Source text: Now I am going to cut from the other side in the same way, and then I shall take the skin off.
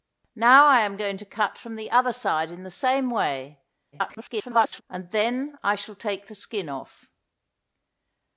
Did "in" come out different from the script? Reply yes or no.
no